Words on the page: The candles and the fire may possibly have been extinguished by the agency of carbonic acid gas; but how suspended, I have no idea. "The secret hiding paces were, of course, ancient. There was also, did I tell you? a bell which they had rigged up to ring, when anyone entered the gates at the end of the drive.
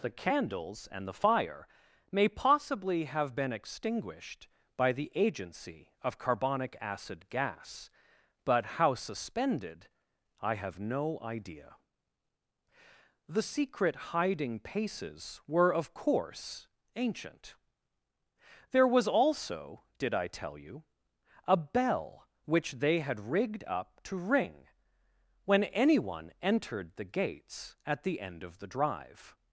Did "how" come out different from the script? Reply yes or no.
no